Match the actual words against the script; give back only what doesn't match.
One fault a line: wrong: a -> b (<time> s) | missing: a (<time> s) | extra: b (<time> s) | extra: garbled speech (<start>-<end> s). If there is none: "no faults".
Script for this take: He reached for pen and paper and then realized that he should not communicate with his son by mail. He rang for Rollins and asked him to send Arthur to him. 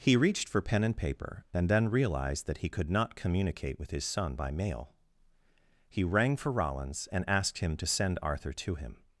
wrong: should -> could (2.7 s)